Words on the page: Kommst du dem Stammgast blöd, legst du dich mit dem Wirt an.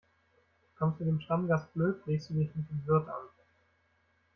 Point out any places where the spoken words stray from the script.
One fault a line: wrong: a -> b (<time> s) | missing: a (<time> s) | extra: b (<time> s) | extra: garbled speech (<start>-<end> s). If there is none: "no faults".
no faults